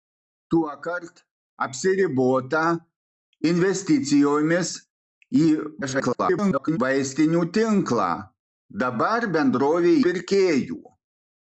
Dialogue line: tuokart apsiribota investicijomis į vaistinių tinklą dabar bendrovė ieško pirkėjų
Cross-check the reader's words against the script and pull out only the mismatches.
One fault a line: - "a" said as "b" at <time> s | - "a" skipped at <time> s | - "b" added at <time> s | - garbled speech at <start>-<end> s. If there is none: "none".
- garbled speech at 5.8-6.8 s
- "ieško" skipped at 10.0 s